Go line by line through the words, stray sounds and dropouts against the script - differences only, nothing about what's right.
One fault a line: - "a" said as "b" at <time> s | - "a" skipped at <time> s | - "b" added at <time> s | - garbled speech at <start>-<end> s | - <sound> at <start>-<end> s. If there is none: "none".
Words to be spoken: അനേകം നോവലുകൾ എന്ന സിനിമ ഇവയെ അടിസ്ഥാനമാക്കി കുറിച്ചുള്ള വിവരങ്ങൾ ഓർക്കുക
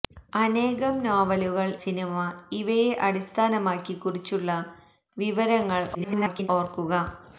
- "എന്ന" skipped at 1.7 s
- garbled speech at 5.9-6.5 s